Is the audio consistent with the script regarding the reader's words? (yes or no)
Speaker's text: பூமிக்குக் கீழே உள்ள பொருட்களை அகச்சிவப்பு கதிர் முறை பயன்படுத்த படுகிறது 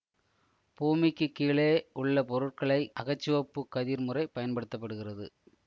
yes